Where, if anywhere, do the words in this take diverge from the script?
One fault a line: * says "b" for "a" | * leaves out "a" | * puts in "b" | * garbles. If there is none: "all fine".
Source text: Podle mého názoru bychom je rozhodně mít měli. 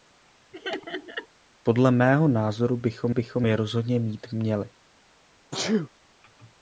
* puts in "bychom"